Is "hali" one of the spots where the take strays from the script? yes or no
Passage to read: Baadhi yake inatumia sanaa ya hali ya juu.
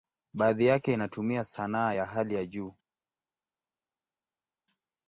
no